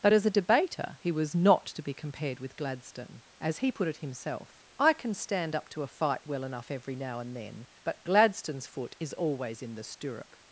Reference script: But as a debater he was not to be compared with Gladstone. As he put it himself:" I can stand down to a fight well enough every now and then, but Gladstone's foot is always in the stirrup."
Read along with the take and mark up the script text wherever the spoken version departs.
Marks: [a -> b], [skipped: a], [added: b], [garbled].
But as a debater he was not to be compared with Gladstone. As he put it himself:" I can stand [down -> up] to a fight well enough every now and then, but Gladstone's foot is always in the stirrup."